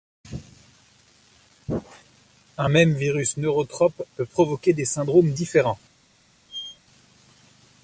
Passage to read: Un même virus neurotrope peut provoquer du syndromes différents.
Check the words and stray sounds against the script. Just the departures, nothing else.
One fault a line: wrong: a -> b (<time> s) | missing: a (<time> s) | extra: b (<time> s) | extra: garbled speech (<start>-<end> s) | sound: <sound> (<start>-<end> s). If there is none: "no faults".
wrong: du -> des (4.7 s)
sound: squeak (6.5-6.8 s)